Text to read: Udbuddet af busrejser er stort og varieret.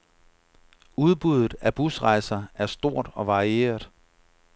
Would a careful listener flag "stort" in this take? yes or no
no